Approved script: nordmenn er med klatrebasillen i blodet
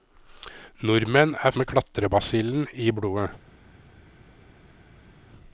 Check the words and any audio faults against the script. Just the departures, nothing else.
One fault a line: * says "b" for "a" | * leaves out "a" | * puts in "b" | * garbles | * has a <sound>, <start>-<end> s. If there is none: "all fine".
all fine